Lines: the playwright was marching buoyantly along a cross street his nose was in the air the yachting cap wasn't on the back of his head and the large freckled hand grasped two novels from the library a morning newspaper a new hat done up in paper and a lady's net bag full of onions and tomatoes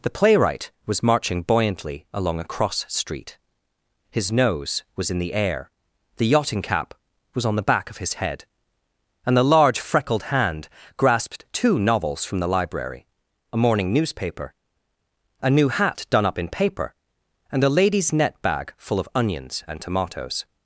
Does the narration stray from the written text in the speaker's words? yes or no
yes